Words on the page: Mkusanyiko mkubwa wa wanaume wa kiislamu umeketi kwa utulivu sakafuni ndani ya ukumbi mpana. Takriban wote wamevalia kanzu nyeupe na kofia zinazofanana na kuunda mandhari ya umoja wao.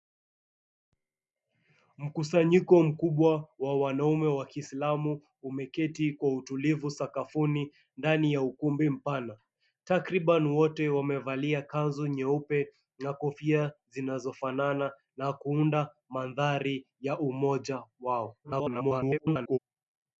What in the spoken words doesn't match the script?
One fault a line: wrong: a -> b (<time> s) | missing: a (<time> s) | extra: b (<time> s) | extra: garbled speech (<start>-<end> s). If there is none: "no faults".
extra: garbled speech (18.4-19.6 s)